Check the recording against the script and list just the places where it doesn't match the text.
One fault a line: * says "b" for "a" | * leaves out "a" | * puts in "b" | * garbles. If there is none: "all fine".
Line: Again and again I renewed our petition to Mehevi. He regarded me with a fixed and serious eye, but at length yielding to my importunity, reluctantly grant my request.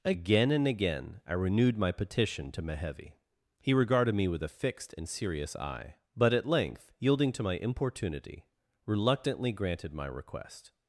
* says "my" for "our"
* says "granted" for "grant"